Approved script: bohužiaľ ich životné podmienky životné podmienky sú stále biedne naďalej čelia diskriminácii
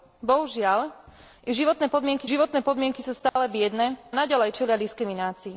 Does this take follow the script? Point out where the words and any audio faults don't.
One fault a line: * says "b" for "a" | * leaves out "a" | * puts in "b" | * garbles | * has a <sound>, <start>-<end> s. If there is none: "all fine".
* has a dropout, 3.3-3.4 s